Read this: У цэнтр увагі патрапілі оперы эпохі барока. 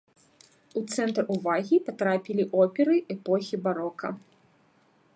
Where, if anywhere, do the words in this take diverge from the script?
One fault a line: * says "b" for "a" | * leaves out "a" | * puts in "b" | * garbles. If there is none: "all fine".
all fine